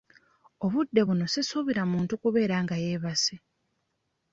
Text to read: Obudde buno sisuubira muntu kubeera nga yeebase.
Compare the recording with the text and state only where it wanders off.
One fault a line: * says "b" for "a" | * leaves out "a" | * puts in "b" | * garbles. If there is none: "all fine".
all fine